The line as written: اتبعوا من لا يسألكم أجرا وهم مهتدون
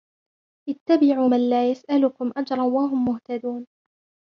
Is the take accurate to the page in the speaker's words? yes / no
yes